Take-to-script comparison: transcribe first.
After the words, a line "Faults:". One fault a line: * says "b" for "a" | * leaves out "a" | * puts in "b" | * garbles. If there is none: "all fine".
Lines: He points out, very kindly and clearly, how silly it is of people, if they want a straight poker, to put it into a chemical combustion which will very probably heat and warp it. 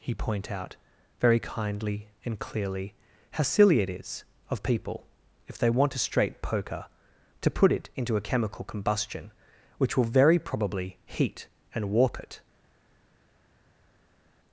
He point out, very kindly and clearly, how silly it is of people, if they want a straight poker, to put it into a chemical combustion which will very probably heat and warp it.
Faults:
* says "point" for "points"